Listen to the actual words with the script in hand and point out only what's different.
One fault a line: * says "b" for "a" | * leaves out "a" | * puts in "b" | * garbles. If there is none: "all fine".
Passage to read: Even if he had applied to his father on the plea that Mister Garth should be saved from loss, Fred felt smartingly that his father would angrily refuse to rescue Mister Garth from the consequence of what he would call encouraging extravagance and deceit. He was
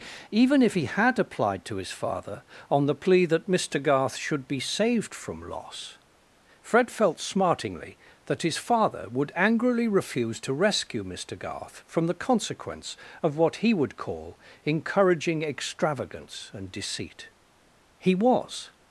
all fine